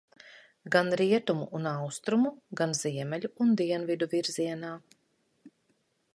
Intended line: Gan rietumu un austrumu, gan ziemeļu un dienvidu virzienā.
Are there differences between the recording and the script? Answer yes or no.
no